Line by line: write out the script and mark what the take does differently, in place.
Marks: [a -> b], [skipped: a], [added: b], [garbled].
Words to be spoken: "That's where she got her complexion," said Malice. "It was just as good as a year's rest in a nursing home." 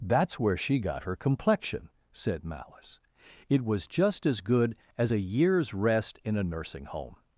"That's where she got her complexion," said Malice. "It was just as good as a year's rest in a nursing home."